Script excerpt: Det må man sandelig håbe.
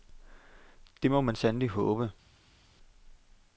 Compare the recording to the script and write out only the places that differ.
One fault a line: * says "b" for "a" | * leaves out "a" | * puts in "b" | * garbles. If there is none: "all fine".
all fine